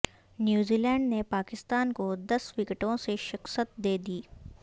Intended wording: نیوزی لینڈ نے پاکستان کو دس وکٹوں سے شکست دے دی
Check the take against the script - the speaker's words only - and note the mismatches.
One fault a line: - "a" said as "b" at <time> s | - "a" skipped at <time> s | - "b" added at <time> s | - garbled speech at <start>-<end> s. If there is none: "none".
none